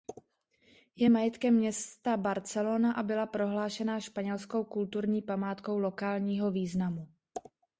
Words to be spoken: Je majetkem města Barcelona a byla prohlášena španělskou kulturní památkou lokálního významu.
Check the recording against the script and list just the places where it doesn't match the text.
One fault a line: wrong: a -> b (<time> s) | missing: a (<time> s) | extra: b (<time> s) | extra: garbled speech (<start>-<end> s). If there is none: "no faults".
no faults